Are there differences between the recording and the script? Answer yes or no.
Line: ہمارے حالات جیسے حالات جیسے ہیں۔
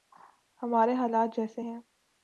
yes